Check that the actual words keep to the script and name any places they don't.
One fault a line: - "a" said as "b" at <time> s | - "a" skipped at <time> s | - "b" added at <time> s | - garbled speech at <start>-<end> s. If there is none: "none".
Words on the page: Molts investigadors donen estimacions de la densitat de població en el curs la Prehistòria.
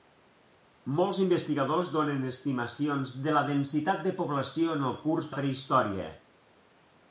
none